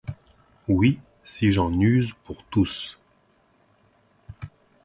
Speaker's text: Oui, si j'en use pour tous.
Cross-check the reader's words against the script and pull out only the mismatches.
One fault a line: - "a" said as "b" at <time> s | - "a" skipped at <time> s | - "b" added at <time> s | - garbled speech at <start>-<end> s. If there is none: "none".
none